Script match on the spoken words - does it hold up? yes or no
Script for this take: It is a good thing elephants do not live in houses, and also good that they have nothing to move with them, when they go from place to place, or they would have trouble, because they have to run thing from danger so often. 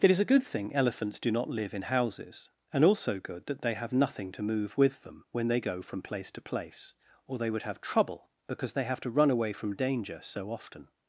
no